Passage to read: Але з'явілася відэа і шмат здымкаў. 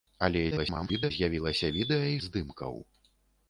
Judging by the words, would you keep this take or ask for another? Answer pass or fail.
fail